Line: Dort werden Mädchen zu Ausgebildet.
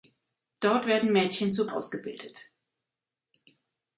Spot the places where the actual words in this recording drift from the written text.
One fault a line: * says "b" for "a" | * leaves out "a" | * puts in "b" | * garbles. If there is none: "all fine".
all fine